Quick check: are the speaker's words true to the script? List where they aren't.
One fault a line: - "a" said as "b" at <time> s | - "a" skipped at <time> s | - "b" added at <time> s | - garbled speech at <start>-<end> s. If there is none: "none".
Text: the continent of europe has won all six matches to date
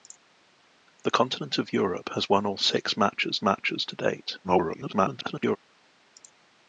- "matches" added at 3.4 s
- garbled speech at 4.4-5.6 s